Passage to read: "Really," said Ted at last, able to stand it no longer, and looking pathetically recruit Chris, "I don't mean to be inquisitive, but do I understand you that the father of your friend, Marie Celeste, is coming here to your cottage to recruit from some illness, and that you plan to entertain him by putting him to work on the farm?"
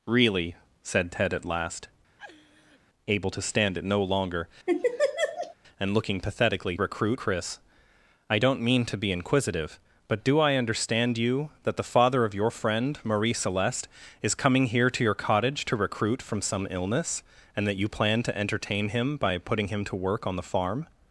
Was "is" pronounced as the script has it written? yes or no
yes